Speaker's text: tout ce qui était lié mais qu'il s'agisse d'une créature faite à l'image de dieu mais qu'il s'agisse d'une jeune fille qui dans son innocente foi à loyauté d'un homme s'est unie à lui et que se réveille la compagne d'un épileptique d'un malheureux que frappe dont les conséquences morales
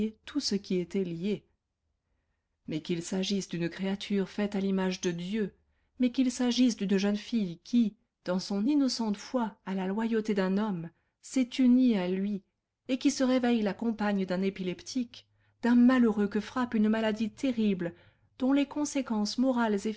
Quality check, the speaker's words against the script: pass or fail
fail